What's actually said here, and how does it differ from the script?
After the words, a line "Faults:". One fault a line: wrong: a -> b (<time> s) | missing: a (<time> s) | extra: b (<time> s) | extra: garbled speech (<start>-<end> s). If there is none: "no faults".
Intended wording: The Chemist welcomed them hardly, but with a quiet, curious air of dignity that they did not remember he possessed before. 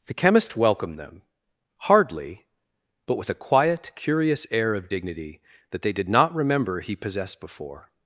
The Chemist welcomed them hardly, but with a quiet, curious air of dignity that they did not remember he possessed before.
Faults:
no faults